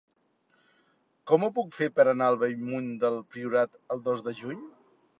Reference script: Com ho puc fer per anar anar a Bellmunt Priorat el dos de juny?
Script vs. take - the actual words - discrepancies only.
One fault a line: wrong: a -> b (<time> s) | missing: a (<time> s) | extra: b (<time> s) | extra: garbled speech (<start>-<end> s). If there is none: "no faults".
missing: anar (2.3 s)
extra: del (3.1 s)